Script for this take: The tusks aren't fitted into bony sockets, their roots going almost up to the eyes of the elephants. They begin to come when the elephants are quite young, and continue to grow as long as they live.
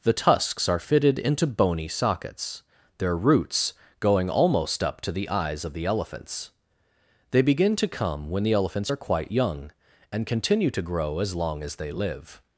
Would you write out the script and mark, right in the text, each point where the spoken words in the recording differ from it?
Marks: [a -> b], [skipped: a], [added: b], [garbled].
The tusks [aren't -> are] fitted into bony sockets, their roots going almost up to the eyes of the elephants. They begin to come when the elephants are quite young, and continue to grow as long as they live.